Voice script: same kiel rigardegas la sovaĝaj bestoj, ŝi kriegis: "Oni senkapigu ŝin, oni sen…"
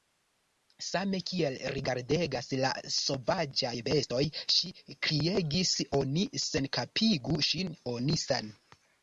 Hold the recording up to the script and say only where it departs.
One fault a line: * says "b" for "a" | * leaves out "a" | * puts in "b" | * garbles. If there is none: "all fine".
all fine